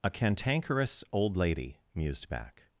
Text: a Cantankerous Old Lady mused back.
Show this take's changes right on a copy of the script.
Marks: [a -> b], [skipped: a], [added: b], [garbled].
a Cantankerous Old Lady mused back.